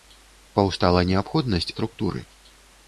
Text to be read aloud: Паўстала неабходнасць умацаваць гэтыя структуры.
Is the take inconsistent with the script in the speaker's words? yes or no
yes